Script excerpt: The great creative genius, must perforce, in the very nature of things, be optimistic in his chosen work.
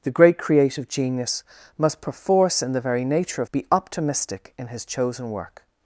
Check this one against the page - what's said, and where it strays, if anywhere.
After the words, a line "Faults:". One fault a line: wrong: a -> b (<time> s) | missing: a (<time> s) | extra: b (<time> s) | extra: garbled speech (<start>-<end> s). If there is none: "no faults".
The great creative genius, must perforce, in the very nature of be optimistic in his chosen work.
Faults:
missing: things (3.5 s)